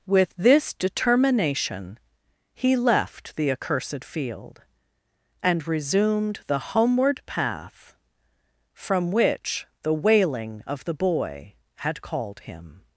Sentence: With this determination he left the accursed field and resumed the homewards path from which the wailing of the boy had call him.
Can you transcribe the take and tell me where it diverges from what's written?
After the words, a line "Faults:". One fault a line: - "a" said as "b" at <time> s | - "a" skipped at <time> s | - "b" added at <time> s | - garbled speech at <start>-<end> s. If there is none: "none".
With this determination he left the accursed field and resumed the homeward path from which the wailing of the boy had called him.
Faults:
- "homewards" said as "homeward" at 6.6 s
- "call" said as "called" at 12.0 s